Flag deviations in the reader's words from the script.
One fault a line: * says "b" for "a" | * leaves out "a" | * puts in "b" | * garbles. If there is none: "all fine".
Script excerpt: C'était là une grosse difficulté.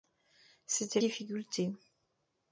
* leaves out "là une grosse"